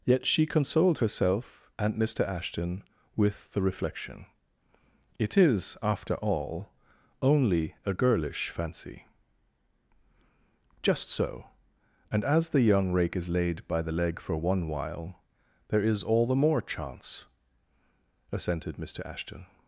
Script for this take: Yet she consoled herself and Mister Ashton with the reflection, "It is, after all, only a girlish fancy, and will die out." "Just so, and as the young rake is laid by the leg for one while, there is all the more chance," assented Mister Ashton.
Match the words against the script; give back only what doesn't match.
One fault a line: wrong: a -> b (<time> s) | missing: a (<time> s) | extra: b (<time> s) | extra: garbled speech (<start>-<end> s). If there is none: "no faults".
missing: and will die out (9.0 s)